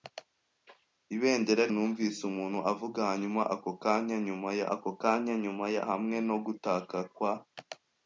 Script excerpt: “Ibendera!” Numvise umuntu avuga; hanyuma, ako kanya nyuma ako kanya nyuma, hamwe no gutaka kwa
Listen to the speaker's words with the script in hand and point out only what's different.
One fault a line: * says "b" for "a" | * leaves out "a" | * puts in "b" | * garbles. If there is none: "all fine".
all fine